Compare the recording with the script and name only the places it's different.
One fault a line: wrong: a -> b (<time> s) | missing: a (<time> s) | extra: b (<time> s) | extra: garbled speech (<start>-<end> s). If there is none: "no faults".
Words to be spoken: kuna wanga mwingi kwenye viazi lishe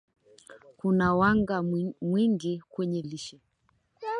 missing: viazi (3.0 s)